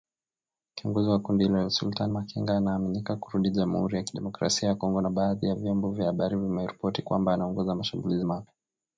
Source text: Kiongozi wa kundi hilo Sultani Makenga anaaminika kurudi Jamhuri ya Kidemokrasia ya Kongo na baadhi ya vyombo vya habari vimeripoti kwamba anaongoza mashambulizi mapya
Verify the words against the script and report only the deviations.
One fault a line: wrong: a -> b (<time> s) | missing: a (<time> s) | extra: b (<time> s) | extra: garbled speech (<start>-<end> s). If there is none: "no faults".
no faults